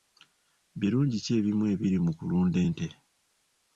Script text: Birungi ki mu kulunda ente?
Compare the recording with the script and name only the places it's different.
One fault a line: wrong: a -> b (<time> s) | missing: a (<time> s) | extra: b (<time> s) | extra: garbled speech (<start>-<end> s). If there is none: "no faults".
extra: ebimu ebiri (1.4 s)